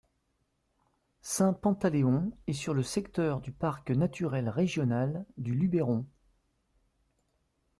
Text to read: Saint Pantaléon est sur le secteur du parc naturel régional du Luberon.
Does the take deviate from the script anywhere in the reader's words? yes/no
no